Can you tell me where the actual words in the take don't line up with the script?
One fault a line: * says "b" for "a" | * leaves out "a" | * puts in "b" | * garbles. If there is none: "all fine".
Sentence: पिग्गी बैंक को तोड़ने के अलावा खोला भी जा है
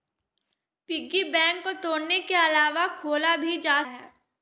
all fine